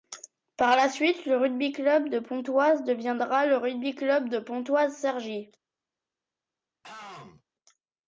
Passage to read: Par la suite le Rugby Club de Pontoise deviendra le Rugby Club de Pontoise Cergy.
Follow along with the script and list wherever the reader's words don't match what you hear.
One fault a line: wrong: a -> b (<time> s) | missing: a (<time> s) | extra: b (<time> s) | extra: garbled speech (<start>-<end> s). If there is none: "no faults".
no faults